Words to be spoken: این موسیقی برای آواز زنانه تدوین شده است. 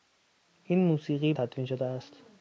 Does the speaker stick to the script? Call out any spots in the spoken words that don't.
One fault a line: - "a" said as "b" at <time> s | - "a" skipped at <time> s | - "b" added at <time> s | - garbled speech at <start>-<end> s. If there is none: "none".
- "برای آواز زنانه" skipped at 1.3 s